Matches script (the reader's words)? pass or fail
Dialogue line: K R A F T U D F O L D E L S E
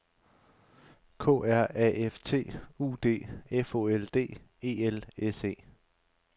pass